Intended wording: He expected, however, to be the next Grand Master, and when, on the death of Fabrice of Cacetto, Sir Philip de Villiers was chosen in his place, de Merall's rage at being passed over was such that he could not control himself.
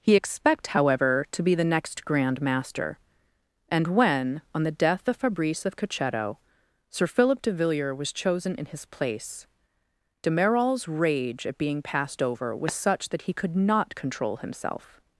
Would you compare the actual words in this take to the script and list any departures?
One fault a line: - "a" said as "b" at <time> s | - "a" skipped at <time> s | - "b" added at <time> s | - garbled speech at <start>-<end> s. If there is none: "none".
- "expected" said as "expect" at 0.1 s